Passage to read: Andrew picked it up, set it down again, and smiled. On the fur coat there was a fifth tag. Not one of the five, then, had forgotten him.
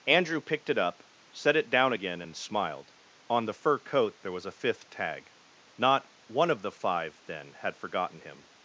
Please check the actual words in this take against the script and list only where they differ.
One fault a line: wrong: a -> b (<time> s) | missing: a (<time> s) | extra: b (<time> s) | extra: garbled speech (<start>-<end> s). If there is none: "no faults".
no faults